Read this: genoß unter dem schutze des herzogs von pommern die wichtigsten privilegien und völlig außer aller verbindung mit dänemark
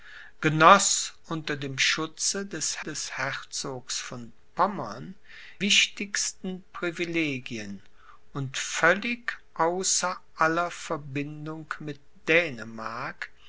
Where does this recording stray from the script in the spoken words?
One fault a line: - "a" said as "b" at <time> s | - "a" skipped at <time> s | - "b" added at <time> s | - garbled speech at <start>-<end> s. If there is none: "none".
- "des" added at 2.8 s
- "die" skipped at 5.1 s